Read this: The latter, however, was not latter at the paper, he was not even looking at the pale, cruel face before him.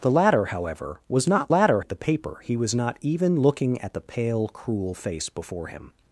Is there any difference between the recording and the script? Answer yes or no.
no